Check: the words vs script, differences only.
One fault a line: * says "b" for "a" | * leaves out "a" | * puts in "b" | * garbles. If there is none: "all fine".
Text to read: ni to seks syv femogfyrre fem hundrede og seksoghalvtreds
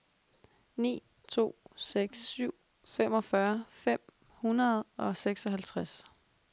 all fine